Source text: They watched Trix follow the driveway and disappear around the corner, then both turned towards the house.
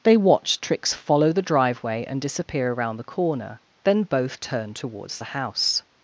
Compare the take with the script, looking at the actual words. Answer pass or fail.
pass